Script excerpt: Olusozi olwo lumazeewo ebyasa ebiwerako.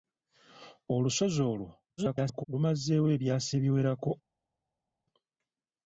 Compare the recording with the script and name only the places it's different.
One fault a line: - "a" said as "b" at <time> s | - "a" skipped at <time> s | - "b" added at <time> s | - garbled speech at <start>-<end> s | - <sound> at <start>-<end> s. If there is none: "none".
- garbled speech at 2.0-2.4 s